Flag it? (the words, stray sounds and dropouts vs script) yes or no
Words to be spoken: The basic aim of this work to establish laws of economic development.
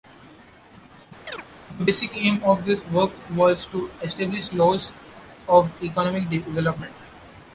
yes